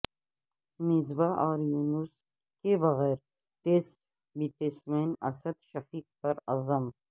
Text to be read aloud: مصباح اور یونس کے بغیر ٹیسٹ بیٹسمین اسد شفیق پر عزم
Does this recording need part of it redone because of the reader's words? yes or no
no